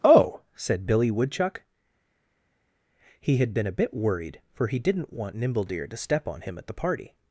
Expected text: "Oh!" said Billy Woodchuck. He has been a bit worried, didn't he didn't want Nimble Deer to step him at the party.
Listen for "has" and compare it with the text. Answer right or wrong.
wrong